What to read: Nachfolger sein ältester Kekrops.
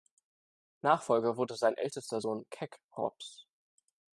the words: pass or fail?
fail